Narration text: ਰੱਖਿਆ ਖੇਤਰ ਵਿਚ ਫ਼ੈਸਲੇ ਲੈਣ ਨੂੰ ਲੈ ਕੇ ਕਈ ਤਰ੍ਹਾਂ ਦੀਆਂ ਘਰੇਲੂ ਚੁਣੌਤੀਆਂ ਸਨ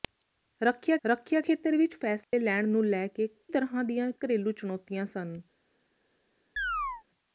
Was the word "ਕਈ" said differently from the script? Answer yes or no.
yes